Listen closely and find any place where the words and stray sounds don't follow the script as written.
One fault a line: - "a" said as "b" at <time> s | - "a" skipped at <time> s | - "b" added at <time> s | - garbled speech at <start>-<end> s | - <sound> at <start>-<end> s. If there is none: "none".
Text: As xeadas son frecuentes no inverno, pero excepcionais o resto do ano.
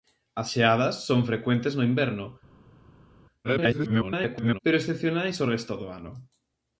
- garbled speech at 3.4-4.6 s